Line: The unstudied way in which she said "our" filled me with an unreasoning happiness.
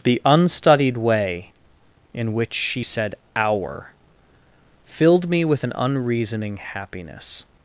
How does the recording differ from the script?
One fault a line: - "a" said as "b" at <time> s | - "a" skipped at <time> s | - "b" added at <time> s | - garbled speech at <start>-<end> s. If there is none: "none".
none